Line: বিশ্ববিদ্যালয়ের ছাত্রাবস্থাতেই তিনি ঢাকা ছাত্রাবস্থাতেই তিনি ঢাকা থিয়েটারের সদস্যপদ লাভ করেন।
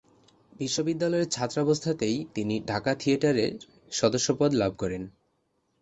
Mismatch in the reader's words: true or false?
true